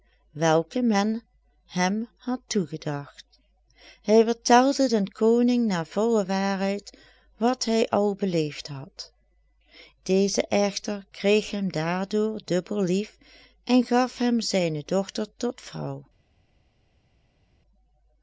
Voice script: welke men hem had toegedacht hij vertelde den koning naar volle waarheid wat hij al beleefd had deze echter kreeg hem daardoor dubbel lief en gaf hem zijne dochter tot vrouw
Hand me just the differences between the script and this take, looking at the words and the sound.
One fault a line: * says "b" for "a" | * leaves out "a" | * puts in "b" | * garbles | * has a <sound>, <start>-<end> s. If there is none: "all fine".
all fine